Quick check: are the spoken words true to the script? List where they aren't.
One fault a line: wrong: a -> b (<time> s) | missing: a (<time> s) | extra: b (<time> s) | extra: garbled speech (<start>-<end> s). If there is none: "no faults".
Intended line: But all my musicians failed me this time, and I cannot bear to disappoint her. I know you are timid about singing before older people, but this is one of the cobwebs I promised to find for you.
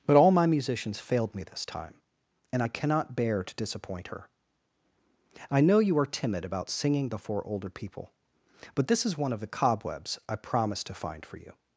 no faults